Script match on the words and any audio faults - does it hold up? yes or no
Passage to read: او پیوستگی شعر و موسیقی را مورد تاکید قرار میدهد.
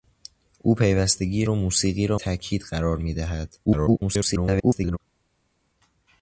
no